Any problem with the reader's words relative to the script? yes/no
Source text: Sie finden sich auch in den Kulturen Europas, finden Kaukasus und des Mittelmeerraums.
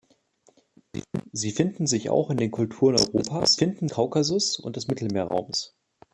no